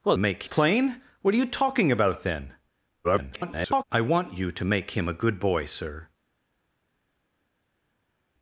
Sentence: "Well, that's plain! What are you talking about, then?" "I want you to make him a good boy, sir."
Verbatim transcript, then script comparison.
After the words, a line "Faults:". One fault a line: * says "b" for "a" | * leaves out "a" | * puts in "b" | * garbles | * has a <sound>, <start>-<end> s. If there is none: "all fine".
"Well, make plain! What are you talking about, then?" [garbled] "I want you to make him a good boy, sir."
Faults:
* says "make" for "that's"
* garbles